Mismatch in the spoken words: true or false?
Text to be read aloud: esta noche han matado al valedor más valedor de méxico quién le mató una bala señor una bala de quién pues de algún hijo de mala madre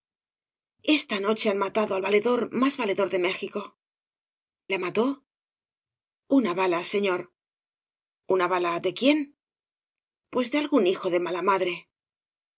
true